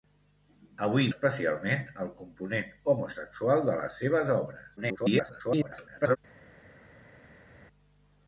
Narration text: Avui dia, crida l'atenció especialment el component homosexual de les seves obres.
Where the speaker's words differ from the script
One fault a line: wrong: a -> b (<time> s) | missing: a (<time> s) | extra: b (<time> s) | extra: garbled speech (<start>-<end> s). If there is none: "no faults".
missing: dia crida l'atenció (1.1 s)
extra: garbled speech (4.8-6.2 s)